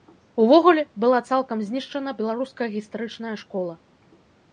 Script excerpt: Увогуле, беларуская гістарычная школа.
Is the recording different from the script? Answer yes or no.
yes